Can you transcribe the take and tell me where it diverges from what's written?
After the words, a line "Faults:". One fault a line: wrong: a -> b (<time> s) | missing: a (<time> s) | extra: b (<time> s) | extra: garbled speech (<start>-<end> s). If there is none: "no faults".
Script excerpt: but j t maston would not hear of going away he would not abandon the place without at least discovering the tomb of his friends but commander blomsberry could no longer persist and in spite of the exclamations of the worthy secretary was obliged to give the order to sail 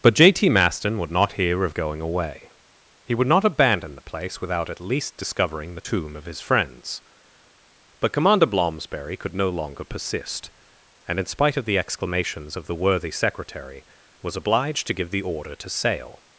but j t maston would not hear of going away he would not abandon the place without at least discovering the tomb of his friends but commander blomsberry could no longer persist and in spite of the exclamations of the worthy secretary was obliged to give the order to sail
Faults:
no faults